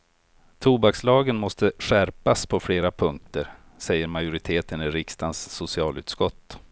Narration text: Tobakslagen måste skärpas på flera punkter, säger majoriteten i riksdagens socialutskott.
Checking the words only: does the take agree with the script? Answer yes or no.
yes